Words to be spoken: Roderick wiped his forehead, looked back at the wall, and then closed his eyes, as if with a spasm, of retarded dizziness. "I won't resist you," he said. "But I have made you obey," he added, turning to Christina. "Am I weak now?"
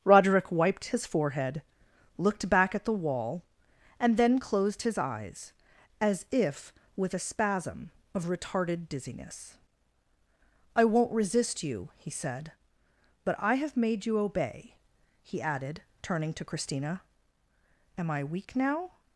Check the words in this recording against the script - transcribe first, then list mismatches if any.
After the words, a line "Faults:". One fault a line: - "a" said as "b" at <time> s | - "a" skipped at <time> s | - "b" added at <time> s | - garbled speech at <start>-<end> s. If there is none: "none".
Roderick wiped his forehead, looked back at the wall, and then closed his eyes, as if with a spasm, of retarded dizziness. "I won't resist you," he said. "But I have made you obey," he added, turning to Christina. "Am I weak now?"
Faults:
none